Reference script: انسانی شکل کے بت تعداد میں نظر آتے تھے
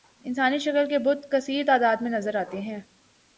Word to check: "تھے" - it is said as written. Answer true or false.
false